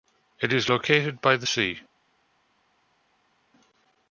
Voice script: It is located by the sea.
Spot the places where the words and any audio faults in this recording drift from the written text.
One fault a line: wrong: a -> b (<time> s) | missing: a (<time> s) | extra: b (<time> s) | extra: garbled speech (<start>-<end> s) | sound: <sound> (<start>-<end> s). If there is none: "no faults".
no faults